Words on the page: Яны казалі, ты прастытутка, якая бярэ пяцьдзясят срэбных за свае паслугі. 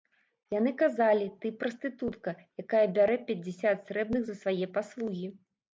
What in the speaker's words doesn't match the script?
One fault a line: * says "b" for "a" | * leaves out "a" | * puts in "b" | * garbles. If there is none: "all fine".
all fine